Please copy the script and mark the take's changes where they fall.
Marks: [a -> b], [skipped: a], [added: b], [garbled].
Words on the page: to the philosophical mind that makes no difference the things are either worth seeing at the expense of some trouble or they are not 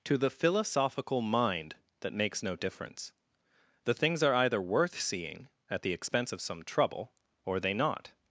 to the philosophical mind that makes no difference the things are either worth seeing at the expense of some trouble or they [skipped: are] not